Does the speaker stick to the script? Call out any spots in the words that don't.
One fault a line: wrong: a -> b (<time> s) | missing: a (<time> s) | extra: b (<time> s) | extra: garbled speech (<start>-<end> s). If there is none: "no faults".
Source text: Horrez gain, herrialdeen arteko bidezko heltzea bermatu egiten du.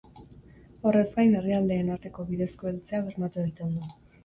no faults